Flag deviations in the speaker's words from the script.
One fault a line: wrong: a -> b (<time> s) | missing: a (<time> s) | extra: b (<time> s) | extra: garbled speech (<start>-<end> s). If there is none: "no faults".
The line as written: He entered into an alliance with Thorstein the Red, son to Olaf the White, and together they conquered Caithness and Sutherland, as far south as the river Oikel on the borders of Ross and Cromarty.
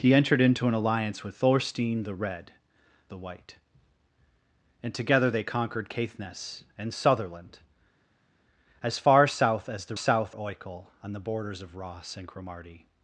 missing: son to Olaf (2.5 s)
wrong: river -> south (9.9 s)